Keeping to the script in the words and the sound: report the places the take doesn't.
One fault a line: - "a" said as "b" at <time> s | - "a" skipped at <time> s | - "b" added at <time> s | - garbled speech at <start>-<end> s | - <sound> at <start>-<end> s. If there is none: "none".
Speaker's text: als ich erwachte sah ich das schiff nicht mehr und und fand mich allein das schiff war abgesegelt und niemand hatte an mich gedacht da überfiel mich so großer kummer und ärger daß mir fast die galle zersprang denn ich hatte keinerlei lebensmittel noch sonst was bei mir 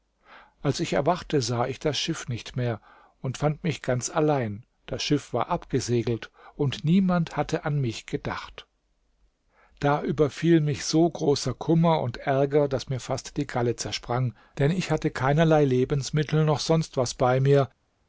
- "und" skipped at 3.4 s
- "ganz" added at 3.8 s